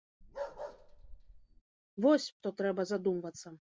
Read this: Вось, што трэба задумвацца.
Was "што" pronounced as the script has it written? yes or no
yes